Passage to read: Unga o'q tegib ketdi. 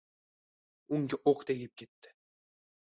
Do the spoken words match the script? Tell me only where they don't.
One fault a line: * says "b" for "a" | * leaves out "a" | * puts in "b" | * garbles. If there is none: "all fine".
all fine